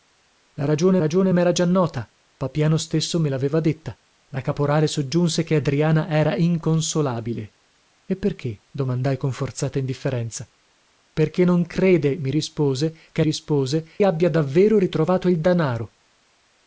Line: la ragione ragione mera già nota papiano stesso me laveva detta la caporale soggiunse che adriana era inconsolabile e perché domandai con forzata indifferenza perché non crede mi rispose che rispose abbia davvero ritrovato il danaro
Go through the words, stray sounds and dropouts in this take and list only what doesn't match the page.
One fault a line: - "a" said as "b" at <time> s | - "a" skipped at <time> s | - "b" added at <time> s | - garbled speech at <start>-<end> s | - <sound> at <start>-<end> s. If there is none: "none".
none